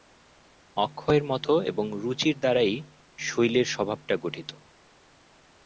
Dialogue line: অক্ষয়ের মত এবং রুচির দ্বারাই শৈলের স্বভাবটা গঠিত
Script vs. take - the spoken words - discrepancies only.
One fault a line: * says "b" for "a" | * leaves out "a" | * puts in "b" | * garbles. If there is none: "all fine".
all fine